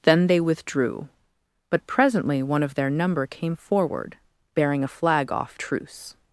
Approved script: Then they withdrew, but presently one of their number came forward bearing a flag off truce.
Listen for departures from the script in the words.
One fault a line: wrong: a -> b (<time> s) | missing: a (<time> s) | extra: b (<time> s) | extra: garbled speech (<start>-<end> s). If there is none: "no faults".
no faults